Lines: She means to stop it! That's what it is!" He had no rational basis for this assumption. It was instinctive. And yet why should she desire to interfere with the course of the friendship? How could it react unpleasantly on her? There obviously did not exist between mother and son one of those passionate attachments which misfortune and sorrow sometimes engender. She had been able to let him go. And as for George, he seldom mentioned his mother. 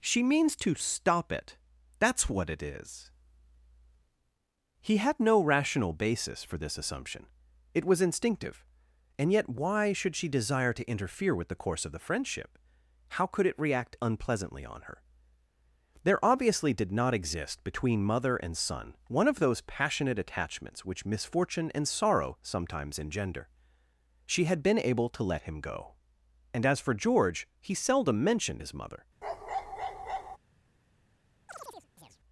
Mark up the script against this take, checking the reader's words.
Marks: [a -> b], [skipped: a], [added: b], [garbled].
She means to stop it! That's what it is!" He had no rational basis for this assumption. It was instinctive. And yet why should she desire to interfere with the course of the friendship? How could it react unpleasantly on her? There obviously did not exist between mother and son one of those passionate attachments which misfortune and sorrow sometimes engender. She had been able to let him go. And as for George, he seldom mentioned his mother.